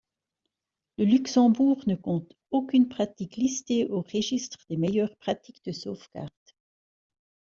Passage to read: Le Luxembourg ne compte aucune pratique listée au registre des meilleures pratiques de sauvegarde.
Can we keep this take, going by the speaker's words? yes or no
yes